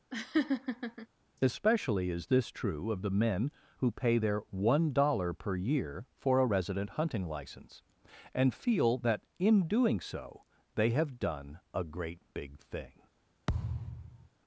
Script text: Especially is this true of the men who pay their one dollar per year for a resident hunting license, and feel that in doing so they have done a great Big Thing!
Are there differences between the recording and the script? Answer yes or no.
no